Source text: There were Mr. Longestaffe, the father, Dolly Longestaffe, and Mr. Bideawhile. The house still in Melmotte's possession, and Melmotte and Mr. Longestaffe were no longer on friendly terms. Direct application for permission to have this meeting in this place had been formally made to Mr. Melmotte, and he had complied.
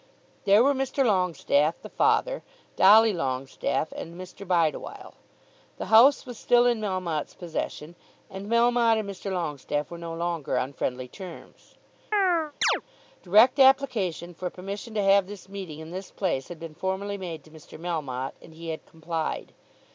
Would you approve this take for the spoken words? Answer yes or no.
no